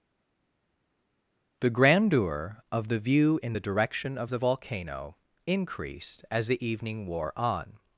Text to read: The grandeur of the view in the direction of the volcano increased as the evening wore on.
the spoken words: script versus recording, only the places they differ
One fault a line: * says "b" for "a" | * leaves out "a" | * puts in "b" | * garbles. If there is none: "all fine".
all fine